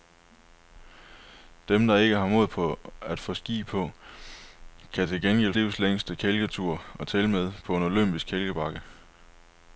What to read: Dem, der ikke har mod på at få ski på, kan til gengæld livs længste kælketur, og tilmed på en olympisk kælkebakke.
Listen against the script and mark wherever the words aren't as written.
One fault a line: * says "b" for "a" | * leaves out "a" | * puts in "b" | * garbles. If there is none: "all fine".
all fine